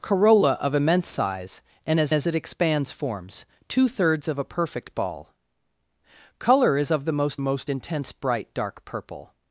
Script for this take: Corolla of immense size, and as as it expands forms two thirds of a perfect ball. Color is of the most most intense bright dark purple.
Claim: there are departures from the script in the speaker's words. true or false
false